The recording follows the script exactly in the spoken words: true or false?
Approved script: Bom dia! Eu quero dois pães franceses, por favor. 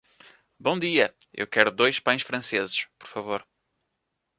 true